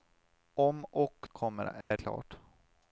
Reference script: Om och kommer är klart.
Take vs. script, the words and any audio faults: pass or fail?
fail